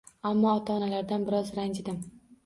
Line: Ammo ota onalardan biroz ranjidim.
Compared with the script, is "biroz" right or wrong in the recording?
right